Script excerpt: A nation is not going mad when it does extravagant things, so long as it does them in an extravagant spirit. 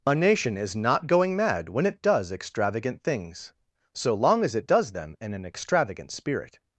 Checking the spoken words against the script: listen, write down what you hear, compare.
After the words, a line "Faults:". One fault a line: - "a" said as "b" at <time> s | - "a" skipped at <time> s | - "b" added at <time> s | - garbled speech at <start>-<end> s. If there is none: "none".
A nation is not going mad when it does extravagant things, so long as it does them in an extravagant spirit.
Faults:
none